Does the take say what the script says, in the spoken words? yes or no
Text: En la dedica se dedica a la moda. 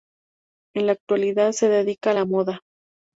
no